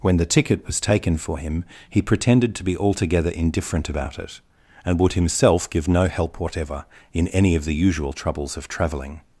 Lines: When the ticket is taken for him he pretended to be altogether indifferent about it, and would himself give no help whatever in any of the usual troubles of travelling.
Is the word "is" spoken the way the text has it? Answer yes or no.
no